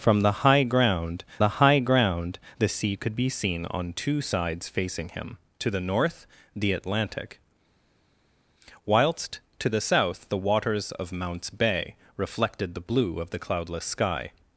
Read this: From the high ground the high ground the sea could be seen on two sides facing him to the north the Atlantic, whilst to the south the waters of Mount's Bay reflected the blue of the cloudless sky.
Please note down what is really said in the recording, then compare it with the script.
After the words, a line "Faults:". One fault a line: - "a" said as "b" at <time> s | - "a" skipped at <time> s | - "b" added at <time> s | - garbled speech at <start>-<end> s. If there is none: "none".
From the high ground the high ground the sea could be seen on two sides facing him to the north the Atlantic, whilst to the south the waters of Mount's Bay reflected the blue of the cloudless sky.
Faults:
none